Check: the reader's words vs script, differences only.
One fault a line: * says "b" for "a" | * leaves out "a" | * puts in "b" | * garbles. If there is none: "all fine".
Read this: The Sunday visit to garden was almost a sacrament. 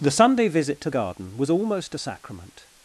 all fine